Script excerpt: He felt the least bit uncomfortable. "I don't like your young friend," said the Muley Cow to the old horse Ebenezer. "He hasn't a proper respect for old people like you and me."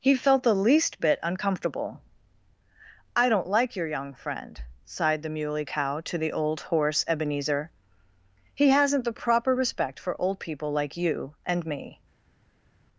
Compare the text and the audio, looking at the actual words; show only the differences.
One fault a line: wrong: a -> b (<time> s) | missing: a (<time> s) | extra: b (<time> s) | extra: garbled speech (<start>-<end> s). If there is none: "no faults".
wrong: said -> sighed (4.8 s)
wrong: a -> the (9.1 s)